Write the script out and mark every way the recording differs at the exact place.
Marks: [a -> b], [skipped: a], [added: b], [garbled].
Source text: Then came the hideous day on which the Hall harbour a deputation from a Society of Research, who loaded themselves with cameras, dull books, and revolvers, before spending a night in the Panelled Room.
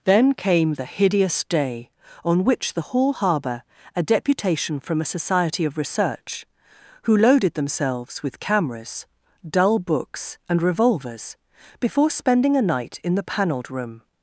Then came the hideous day on which the Hall harbour a deputation from a Society of Research, who loaded themselves with cameras, dull books, and revolvers, before spending a night in the Panelled Room.